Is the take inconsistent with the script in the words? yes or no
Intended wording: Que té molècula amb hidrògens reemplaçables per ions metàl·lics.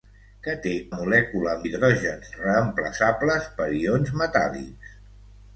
no